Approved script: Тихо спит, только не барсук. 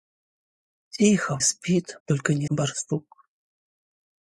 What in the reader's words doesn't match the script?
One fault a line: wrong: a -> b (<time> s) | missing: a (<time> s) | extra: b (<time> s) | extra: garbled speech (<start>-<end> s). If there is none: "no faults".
no faults